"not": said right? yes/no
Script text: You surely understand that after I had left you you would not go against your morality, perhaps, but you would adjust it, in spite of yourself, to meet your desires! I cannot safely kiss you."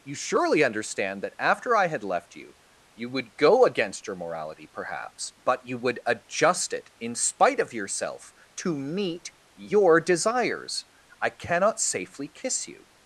no